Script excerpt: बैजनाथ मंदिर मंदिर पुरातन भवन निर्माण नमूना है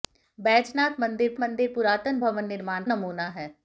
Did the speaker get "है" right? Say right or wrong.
right